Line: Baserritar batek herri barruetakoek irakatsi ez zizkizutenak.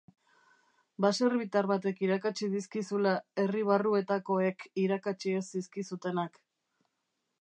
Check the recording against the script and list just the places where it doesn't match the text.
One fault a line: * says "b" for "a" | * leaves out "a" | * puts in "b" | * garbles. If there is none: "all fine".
* puts in "irakatsi dizkizula"